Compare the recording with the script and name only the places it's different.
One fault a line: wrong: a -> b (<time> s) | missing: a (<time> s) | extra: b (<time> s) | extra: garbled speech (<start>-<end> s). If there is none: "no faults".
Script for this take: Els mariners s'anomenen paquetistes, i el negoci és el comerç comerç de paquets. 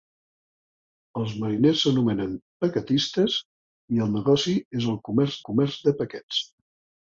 no faults